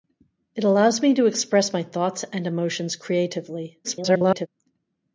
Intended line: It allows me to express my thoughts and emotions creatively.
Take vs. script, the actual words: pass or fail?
fail